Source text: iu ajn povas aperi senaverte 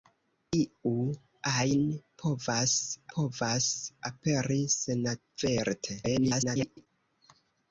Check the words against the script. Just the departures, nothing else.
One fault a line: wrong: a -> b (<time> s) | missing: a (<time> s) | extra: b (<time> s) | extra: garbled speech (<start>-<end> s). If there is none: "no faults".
extra: povas (3.2 s)
extra: garbled speech (6.0-6.9 s)